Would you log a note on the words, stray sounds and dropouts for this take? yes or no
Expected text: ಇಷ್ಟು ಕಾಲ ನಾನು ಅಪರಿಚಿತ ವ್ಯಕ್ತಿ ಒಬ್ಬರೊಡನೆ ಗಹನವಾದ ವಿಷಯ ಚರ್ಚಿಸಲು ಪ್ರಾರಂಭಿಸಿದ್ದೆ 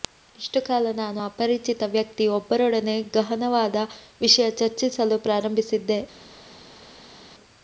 no